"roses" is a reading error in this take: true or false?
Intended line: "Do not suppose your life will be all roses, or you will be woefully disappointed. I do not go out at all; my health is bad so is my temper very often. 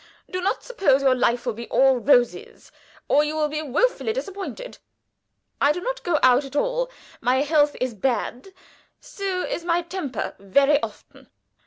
false